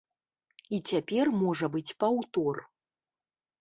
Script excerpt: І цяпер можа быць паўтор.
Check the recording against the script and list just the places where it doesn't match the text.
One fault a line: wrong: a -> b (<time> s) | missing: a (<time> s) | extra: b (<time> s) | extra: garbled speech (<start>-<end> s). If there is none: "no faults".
no faults